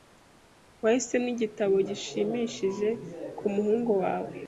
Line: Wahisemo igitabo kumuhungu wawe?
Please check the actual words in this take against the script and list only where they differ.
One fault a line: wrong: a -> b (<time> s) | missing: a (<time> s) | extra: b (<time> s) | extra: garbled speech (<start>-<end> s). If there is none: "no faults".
extra: gishimishije (1.9 s)